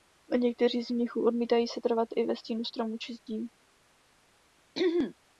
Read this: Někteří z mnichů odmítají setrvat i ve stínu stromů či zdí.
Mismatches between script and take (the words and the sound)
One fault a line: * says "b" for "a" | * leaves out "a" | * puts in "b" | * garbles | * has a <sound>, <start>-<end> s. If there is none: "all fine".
* has a throat clearing, 4.7-5.1 s